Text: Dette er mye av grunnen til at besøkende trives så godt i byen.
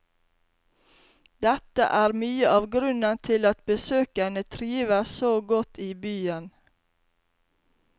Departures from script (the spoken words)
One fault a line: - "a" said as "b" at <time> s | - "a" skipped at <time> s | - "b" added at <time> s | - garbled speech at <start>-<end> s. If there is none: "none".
none